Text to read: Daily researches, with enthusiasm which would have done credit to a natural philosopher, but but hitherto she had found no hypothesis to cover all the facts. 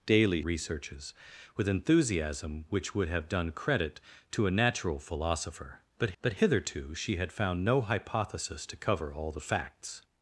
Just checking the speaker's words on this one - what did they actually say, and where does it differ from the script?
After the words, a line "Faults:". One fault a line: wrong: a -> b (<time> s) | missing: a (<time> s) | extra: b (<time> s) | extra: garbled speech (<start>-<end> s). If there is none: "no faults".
Daily researches, with enthusiasm which would have done credit to a natural philosopher, but but hitherto she had found no hypothesis to cover all the facts.
Faults:
no faults